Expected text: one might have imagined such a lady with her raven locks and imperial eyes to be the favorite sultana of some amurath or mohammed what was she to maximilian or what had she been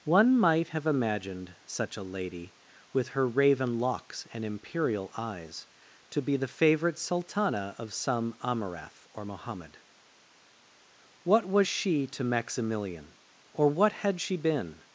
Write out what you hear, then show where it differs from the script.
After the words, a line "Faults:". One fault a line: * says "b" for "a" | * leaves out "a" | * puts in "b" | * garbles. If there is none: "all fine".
one might have imagined such a lady with her raven locks and imperial eyes to be the favorite sultana of some amurath or mohammed what was she to maximilian or what had she been
Faults:
all fine